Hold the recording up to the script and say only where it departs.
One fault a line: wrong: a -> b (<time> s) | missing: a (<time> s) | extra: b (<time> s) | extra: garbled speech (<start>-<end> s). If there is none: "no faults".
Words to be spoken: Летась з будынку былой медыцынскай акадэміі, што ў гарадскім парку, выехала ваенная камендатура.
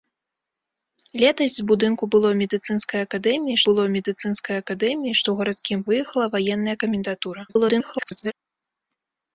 extra: былой медыцынскай акадэміі (3.7 s)
missing: парку (5.8 s)
extra: garbled speech (7.5-8.3 s)